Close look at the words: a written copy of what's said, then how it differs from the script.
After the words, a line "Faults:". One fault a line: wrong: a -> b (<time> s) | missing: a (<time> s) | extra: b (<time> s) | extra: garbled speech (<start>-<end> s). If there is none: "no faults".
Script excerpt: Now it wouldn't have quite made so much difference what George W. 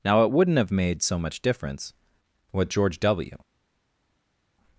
Now it wouldn't have made so much difference what George W.
Faults:
missing: quite (0.7 s)